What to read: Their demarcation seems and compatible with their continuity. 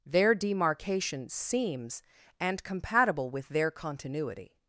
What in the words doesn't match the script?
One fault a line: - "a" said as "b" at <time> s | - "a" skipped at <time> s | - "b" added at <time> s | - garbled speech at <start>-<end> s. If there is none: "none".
none